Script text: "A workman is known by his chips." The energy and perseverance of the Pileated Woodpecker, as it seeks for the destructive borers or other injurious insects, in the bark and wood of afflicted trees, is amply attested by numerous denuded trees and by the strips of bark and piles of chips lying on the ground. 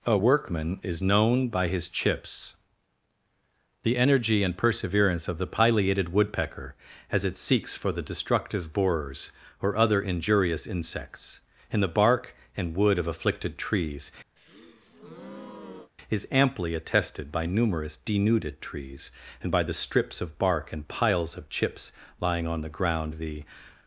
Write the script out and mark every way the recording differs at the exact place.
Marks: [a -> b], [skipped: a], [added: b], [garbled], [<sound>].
"A workman is known by his chips." The energy and perseverance of the Pileated Woodpecker, as it seeks for the destructive borers or other injurious insects, in the bark and wood of afflicted trees, [breath] is amply attested by numerous denuded trees and by the strips of bark and piles of chips lying on the ground. [added: The]